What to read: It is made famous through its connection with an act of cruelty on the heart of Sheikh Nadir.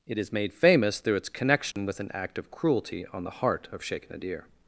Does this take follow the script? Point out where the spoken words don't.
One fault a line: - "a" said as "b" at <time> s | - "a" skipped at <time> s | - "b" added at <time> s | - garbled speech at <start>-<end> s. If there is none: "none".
none